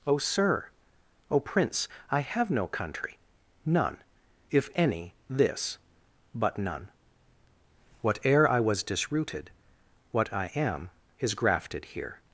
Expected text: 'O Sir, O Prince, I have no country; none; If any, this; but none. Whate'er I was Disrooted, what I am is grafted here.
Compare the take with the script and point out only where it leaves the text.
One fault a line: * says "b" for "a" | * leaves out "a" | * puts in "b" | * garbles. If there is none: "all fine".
all fine